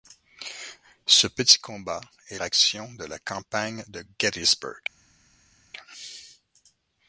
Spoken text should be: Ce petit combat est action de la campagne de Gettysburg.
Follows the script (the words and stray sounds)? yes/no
yes